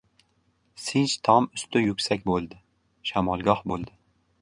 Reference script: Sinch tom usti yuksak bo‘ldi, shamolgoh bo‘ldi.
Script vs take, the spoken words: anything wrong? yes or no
no